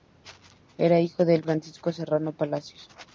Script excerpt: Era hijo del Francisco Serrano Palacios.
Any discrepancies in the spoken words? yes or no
no